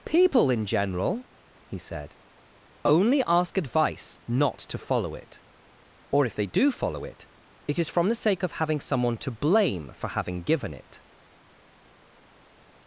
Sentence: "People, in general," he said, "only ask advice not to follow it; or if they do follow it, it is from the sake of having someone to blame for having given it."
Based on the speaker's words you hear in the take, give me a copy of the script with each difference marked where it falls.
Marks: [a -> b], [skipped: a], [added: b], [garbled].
"People, in general," he said, "only ask advice not to follow it; or if they do follow it, it is from the sake of having someone to blame for having given it."